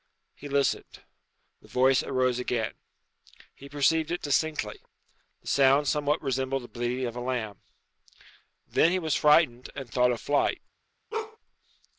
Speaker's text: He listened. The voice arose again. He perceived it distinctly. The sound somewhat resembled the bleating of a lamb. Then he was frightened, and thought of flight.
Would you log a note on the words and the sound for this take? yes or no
yes